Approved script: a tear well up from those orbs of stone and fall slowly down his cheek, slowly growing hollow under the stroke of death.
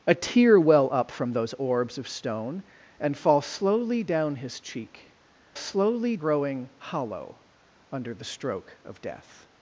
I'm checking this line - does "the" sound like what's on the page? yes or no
yes